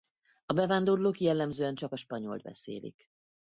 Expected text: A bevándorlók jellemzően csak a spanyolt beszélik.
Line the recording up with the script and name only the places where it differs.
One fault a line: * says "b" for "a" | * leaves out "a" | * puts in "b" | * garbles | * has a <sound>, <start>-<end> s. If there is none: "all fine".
all fine